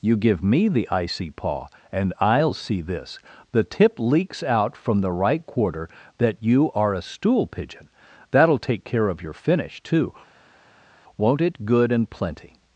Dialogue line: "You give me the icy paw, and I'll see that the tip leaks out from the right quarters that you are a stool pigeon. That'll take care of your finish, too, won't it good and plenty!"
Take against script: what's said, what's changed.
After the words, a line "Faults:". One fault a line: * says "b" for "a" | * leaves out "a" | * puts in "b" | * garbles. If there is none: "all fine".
"You give me the icy paw, and I'll see this the tip leaks out from the right quarter that you are a stool pigeon. That'll take care of your finish, too, won't it good and plenty!"
Faults:
* says "this" for "that"
* says "quarter" for "quarters"